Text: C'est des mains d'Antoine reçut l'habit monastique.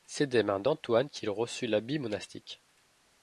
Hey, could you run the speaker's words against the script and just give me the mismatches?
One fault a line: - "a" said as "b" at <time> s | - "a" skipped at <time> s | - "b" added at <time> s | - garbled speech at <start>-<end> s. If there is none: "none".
- "qu'il" added at 1.1 s